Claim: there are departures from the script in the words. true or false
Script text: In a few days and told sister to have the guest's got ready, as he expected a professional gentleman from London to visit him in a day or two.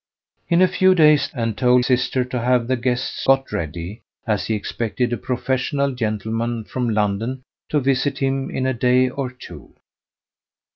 false